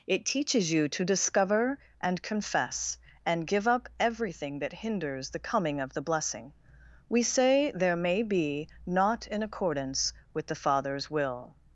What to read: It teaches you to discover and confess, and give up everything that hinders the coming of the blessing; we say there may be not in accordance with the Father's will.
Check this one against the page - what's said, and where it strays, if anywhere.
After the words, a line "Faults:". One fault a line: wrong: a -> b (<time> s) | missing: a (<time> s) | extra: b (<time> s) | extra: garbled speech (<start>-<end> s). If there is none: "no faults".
It teaches you to discover and confess, and give up everything that hinders the coming of the blessing; we say there may be not in accordance with the Father's will.
Faults:
no faults